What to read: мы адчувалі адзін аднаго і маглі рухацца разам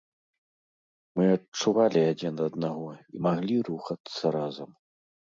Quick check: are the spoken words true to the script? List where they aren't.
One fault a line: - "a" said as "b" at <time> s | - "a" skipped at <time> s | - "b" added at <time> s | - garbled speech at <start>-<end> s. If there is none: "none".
none